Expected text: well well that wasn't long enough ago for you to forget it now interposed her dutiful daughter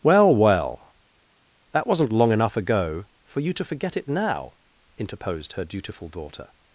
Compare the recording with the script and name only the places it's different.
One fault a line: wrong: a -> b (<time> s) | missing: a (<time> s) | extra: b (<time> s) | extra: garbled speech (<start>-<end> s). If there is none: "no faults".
no faults